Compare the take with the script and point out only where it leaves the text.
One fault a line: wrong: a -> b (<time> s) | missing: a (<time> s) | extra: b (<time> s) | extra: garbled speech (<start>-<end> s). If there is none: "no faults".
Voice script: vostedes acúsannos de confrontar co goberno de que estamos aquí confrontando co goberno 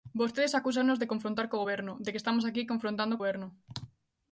missing: co (3.2 s)